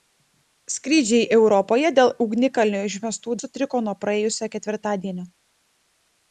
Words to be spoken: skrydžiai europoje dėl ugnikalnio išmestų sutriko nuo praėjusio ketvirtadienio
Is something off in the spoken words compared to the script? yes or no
no